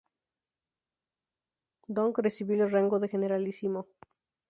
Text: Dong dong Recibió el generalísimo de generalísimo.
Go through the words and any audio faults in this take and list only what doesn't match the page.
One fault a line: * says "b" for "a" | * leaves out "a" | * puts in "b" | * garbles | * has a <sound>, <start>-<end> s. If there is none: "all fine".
* leaves out "dong"
* says "rango" for "generalísimo"